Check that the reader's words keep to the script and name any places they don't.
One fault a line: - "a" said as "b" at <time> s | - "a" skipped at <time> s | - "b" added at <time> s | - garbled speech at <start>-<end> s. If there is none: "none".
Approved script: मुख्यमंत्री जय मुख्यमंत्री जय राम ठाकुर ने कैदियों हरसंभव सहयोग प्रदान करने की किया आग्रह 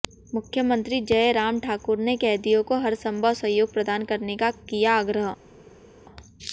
- "मुख्यमंत्री जय" skipped at 1.3 s
- "को" added at 2.6 s
- "की" said as "का" at 4.4 s